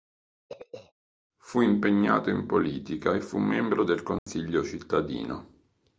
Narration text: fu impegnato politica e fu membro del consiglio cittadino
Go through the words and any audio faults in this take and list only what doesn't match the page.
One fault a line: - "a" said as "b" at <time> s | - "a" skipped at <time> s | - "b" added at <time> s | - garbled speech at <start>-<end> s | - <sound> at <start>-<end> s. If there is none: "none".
- throat clearing at 0.5-0.9 s
- "in" added at 2.3 s
- dropout at 4.2-4.3 s